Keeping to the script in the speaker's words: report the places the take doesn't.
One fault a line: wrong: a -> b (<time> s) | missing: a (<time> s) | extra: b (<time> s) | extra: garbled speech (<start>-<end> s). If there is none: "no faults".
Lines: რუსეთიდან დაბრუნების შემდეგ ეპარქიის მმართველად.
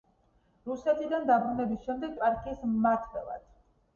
no faults